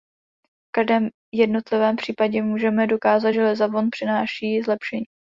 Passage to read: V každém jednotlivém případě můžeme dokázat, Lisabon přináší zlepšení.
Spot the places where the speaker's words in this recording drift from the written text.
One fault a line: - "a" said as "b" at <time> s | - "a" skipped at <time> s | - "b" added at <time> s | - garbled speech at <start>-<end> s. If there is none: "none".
- "že" added at 3.3 s